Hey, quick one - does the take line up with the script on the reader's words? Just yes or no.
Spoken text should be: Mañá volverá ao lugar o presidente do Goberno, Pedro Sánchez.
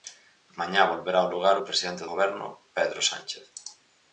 no